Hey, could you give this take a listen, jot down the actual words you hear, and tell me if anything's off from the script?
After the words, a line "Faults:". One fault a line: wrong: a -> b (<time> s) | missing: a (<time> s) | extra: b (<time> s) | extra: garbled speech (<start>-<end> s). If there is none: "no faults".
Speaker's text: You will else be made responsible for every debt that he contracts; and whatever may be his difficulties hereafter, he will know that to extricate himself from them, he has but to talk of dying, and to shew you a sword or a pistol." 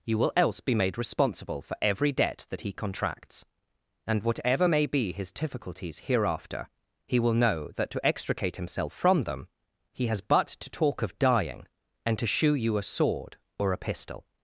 You will else be made responsible for every debt that he contracts; and whatever may be his difficulties hereafter, he will know that to extricate himself from them, he has but to talk of dying, and to shew you a sword or a pistol."
Faults:
no faults